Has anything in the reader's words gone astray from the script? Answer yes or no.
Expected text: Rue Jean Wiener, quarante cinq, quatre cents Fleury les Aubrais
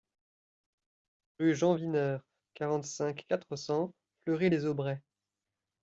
no